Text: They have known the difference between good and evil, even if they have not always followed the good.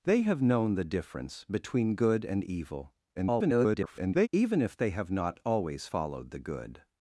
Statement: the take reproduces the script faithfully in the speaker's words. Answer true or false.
false